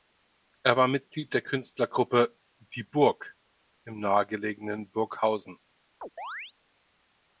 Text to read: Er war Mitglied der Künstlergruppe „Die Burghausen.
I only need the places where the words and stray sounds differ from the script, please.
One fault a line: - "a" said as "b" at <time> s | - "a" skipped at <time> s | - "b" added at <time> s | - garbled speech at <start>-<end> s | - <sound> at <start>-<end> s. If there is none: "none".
- "Burg im nahegelegenen" added at 2.8 s
- chirp at 6.0-6.5 s